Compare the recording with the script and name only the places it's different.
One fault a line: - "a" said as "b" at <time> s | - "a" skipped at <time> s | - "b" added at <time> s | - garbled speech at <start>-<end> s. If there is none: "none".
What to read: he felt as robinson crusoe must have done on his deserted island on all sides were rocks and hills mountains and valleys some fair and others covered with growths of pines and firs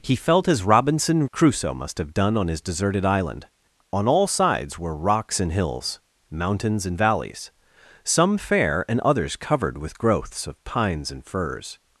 none